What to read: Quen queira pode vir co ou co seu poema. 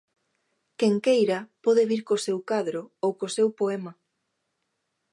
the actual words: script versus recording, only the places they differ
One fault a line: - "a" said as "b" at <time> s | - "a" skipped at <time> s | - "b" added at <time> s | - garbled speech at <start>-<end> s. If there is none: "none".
- "seu cadro" added at 2.2 s